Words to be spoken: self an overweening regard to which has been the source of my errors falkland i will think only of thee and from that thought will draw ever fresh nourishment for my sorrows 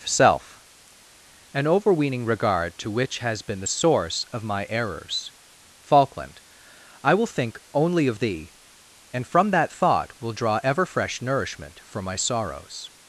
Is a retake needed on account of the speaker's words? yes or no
no